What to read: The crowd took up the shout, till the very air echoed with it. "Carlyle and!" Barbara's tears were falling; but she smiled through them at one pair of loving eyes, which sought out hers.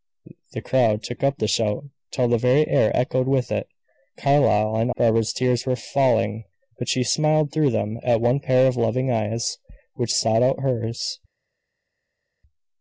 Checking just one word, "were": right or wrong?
right